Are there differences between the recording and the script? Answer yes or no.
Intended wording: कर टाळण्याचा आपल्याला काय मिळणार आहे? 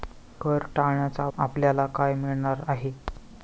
no